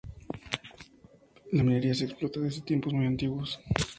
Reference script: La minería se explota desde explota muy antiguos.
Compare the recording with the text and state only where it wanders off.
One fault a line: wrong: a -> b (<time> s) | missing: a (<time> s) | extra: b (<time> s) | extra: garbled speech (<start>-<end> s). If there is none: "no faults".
wrong: explota -> tiempos (2.6 s)